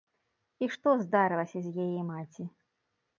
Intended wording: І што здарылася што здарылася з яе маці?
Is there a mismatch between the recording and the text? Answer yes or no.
yes